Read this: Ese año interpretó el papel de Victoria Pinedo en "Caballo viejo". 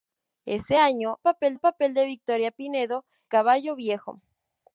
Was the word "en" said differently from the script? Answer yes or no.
yes